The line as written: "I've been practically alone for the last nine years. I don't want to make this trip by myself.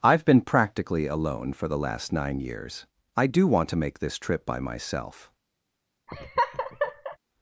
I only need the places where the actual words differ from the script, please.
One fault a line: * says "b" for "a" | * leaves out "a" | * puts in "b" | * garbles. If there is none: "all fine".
* says "do" for "don't"